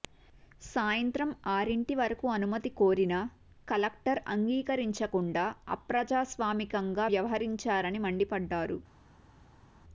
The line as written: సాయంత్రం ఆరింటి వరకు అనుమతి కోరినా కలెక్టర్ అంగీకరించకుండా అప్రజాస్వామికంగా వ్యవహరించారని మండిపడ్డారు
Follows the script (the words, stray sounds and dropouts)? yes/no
yes